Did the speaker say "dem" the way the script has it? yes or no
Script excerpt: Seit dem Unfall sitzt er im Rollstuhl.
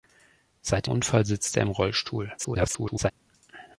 no